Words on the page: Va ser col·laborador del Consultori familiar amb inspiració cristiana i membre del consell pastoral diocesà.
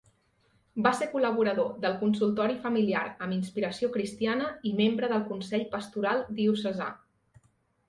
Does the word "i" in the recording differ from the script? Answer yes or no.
no